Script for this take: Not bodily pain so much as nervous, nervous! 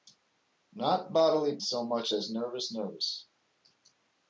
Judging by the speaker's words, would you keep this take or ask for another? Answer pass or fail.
fail